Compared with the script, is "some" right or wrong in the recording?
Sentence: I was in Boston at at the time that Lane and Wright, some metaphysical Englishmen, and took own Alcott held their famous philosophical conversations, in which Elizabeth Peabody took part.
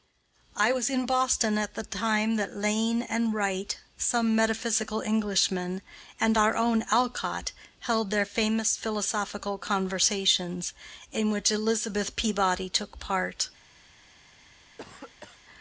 right